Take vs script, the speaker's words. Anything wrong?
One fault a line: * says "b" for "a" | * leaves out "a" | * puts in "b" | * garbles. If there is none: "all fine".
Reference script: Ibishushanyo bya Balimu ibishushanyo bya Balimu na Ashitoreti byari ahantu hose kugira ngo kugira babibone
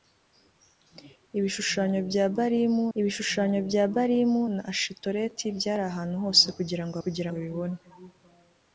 all fine